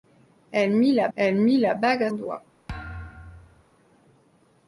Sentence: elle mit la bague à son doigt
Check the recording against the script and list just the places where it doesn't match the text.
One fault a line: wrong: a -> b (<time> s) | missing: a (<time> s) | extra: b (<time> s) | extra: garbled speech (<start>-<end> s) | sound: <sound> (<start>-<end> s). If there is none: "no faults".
extra: elle mit la (1.2 s)
missing: son (2.1 s)
sound: thud (2.7-3.6 s)